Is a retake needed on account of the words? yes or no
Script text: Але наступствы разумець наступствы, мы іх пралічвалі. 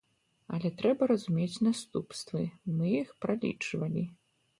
yes